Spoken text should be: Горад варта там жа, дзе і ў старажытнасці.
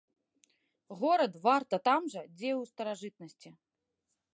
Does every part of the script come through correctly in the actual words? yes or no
yes